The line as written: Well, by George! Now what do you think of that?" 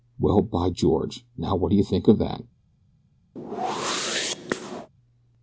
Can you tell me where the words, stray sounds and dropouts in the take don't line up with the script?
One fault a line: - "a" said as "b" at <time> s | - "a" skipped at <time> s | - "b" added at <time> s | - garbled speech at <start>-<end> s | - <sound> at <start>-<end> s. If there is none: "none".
- whoosh at 3.4-4.9 s